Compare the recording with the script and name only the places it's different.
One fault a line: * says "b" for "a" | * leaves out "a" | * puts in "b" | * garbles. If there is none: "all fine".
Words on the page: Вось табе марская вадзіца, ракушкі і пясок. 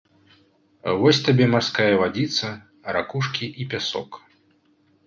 all fine